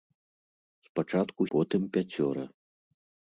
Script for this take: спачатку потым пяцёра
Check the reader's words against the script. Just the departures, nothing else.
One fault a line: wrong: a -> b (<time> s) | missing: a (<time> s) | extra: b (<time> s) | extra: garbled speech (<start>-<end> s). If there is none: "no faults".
no faults